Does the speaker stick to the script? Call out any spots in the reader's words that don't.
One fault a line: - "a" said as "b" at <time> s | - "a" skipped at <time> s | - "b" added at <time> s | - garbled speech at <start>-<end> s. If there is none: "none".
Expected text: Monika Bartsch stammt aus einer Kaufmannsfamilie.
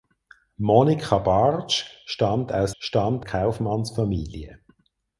- "einer" said as "stammt" at 2.8 s